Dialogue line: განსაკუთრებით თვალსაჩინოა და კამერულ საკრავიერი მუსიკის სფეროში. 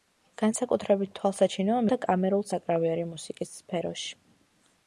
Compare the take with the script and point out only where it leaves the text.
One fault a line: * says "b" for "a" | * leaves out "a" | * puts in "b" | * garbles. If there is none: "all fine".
all fine